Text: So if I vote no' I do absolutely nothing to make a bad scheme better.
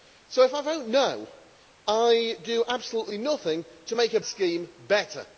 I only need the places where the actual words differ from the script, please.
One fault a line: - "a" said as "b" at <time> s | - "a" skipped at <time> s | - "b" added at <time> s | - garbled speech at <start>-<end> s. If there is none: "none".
- "bad" skipped at 4.2 s